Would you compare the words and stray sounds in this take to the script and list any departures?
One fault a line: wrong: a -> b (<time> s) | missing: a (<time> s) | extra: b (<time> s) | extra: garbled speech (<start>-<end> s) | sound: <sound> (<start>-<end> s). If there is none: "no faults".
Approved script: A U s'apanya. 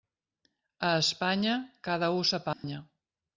extra: Espanya cada (1.0 s)
sound: dropout (2.5-2.6 s)